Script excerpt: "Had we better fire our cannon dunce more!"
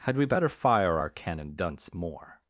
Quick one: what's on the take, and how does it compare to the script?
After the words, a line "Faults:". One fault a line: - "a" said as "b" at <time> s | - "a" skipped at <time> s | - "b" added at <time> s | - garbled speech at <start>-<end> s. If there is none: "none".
"Had we better fire our cannon dunce more!"
Faults:
none